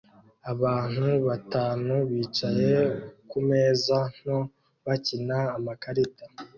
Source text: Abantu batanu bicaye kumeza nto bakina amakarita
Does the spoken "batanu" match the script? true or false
true